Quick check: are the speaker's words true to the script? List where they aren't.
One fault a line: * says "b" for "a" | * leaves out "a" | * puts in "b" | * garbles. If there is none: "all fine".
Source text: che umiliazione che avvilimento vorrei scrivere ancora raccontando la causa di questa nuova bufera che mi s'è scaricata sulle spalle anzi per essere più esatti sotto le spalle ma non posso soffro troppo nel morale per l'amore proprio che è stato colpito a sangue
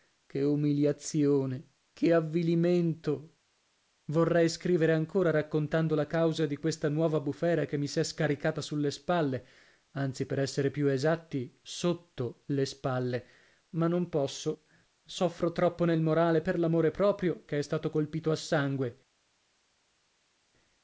all fine